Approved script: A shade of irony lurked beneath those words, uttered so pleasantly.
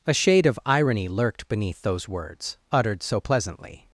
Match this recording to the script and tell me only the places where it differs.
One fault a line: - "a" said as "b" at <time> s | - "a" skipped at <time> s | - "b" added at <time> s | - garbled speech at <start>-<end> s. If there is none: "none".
none